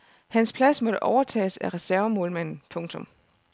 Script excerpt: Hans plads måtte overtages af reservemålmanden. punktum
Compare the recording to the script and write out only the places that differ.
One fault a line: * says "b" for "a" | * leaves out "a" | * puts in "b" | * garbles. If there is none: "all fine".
all fine